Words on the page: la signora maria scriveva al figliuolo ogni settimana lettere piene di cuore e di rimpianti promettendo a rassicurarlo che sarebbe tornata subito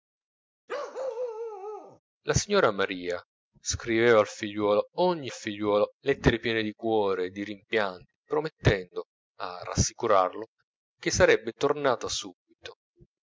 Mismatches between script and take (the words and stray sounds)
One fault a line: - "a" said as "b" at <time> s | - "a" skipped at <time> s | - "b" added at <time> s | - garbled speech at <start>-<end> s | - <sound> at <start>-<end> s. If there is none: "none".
- bark at 0.7-2.0 s
- "settimana" said as "figliuolo" at 5.3 s